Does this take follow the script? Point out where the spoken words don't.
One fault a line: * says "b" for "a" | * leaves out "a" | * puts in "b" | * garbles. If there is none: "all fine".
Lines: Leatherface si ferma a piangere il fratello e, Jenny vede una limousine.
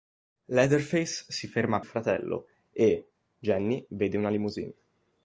* leaves out "piangere"